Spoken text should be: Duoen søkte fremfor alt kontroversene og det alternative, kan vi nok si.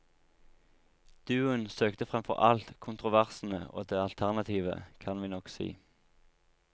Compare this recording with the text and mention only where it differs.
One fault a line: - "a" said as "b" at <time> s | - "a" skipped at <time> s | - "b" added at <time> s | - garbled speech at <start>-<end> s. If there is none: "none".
none